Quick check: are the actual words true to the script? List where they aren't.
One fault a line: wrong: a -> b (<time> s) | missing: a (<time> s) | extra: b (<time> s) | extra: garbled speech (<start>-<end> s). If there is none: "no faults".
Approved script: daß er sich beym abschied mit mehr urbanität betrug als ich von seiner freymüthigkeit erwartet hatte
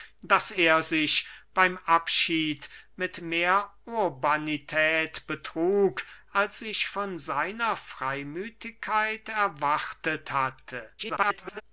extra: garbled speech (11.0-11.6 s)